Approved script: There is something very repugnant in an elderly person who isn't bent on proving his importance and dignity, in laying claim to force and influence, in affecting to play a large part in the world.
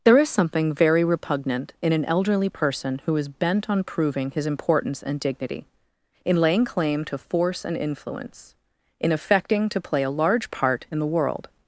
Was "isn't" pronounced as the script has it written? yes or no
no